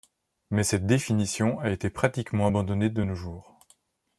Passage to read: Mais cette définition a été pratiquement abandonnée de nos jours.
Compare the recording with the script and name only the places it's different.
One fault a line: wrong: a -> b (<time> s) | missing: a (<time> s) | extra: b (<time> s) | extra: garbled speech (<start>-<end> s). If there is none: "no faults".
no faults